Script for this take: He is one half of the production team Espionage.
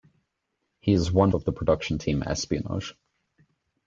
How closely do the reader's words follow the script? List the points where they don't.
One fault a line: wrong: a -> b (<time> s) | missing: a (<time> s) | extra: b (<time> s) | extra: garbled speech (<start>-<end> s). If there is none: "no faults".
missing: half (1.3 s)